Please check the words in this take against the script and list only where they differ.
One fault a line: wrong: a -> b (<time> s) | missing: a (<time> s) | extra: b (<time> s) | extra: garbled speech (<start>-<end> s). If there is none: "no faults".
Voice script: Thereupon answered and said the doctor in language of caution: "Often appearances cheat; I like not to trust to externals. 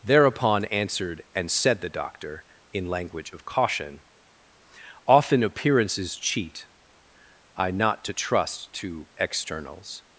missing: like (7.7 s)